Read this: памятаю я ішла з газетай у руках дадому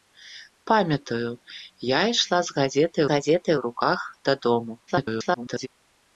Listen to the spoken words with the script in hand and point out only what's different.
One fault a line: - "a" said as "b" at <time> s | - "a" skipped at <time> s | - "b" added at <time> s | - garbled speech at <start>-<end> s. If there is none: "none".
- "газетай" added at 3.1 s
- garbled speech at 4.9-5.7 s